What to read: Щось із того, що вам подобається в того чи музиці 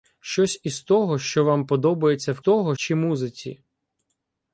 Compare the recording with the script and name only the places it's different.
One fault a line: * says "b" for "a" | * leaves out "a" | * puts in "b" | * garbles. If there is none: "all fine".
all fine